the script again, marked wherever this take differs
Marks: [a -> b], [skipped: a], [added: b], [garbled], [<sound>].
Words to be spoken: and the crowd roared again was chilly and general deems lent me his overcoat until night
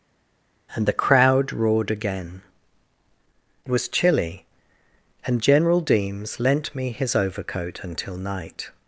and the crowd roared again was chilly and general deems lent me his overcoat until night